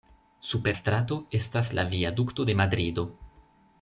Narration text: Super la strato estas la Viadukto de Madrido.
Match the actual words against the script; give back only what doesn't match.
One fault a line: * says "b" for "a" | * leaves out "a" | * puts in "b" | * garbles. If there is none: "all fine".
* leaves out "la"